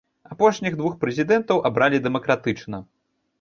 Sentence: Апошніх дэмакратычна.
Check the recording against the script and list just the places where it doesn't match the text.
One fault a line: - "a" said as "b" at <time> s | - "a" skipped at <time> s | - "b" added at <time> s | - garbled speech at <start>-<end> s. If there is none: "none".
- "двух прэзідэнтаў абралі" added at 0.8 s